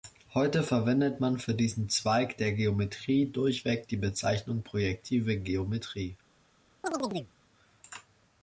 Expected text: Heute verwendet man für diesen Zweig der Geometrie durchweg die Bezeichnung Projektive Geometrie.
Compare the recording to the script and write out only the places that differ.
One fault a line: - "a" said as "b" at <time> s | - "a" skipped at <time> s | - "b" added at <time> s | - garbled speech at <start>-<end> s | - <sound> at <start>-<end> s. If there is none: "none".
- chirp at 6.8-7.3 s